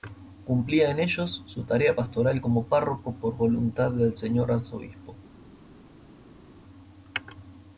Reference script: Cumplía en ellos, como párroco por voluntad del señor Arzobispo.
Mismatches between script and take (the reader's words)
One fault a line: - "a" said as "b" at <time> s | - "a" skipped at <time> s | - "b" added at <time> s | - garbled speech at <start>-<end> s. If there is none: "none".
- "su tarea pastoral" added at 1.4 s